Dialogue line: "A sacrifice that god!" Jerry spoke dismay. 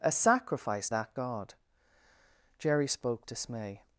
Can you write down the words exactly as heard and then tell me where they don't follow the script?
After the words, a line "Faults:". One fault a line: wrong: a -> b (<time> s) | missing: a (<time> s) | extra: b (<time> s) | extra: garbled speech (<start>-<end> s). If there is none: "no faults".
"A sacrifice that god!" Jerry spoke dismay.
Faults:
no faults